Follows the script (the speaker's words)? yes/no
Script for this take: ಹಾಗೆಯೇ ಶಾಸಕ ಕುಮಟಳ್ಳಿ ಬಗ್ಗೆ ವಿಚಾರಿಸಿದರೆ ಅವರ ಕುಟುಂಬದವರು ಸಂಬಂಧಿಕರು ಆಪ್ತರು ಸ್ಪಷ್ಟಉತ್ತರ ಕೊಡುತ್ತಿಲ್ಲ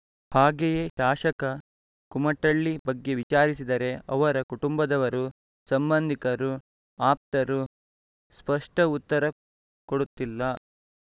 yes